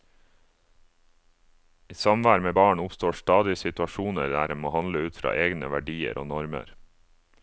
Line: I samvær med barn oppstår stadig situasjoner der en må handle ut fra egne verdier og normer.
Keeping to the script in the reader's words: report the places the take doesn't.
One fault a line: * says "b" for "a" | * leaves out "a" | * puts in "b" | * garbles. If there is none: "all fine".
all fine